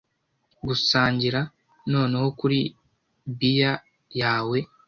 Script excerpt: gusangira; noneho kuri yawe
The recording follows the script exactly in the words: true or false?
false